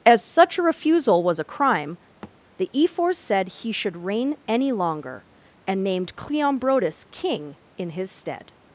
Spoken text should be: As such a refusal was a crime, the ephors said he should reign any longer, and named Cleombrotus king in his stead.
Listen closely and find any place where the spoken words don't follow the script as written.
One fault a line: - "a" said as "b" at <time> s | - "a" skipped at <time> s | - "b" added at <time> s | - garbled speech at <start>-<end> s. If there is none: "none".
none